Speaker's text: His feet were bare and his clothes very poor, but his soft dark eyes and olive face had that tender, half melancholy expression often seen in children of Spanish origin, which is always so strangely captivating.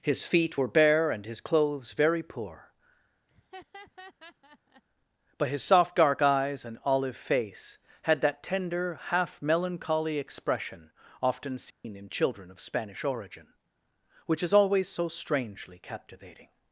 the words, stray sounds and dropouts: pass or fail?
fail